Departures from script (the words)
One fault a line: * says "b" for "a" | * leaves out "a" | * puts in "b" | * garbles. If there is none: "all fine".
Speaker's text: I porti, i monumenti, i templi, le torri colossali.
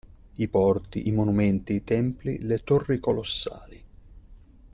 all fine